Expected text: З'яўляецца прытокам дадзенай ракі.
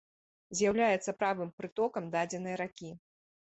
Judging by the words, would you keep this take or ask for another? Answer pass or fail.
fail